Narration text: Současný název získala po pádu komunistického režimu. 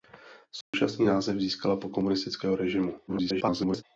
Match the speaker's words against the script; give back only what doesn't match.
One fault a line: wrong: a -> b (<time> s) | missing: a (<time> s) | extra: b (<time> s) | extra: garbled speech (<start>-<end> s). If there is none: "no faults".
missing: pádu (1.9 s)
extra: garbled speech (3.1-3.8 s)